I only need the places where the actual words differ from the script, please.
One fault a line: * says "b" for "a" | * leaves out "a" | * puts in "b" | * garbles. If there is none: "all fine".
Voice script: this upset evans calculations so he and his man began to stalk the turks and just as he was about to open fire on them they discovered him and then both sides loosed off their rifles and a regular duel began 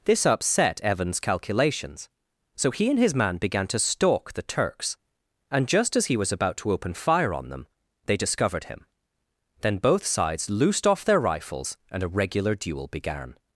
* leaves out "and"